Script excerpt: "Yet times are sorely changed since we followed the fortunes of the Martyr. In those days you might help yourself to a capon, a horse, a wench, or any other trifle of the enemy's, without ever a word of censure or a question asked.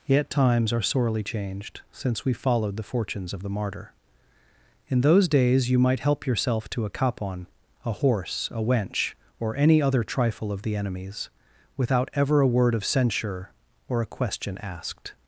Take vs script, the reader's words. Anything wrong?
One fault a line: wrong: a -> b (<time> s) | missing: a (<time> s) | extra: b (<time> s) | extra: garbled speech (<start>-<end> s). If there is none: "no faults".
no faults